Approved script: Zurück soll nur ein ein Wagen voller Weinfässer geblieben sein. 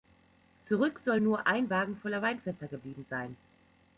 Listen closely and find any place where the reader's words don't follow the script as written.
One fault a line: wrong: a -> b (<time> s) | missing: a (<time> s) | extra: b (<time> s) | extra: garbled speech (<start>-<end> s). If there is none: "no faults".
missing: ein (1.7 s)